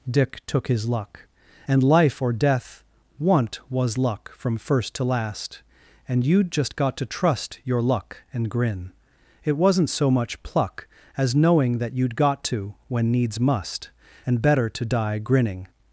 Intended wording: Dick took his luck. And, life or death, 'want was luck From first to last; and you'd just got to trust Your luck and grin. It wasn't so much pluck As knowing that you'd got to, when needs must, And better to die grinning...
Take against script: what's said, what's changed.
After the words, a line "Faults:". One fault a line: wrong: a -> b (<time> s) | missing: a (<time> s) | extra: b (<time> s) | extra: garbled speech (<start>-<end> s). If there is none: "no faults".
Dick took his luck. And, life or death, 'want was luck From first to last; and you'd just got to trust Your luck and grin. It wasn't so much pluck As knowing that you'd got to, when needs must, And better to die grinning...
Faults:
no faults